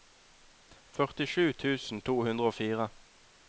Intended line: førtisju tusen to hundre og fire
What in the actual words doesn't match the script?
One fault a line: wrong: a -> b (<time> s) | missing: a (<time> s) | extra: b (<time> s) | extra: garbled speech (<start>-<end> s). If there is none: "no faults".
no faults